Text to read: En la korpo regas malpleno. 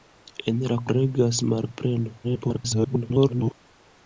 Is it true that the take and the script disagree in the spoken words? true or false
true